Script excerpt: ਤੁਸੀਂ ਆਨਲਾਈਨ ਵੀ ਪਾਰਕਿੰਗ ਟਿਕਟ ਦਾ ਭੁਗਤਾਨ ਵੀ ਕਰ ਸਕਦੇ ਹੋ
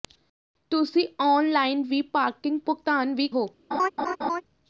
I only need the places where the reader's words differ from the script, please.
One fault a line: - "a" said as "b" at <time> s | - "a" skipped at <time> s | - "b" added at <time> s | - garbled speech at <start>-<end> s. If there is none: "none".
- "ਟਿਕਟ ਦਾ" skipped at 2.6 s
- "ਕਰ ਸਕਦੇ" skipped at 3.3 s